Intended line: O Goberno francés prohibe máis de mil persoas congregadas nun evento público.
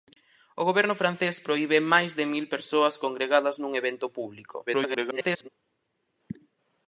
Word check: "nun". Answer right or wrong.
right